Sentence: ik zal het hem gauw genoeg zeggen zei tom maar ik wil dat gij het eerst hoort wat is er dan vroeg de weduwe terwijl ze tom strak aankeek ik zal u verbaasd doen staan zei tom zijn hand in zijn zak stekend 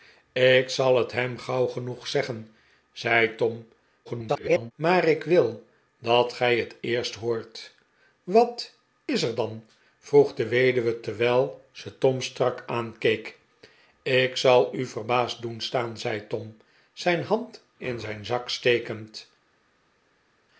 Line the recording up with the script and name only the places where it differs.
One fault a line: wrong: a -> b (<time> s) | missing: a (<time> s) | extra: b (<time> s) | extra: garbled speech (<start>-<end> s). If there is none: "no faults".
extra: garbled speech (4.0-4.7 s)